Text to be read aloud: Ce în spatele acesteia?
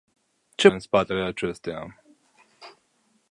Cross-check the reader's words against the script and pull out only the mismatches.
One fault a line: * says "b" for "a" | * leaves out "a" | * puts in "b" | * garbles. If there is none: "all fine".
all fine